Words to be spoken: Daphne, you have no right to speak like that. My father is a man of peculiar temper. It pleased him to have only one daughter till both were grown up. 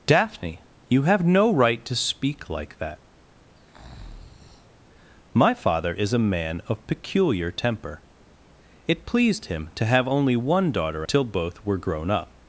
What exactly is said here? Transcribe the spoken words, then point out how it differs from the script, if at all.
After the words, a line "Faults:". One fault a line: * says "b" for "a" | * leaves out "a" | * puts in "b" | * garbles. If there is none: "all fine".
Daphne, you have no right to speak like that. My father is a man of peculiar temper. It pleased him to have only one daughter till both were grown up.
Faults:
all fine